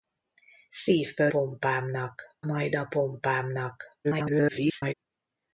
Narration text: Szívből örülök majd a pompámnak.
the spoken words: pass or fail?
fail